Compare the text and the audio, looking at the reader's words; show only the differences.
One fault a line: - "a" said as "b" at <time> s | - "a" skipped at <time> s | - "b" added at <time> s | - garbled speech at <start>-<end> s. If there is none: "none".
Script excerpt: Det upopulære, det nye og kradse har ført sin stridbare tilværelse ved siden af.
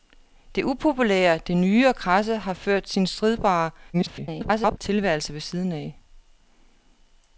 - garbled speech at 3.9-4.8 s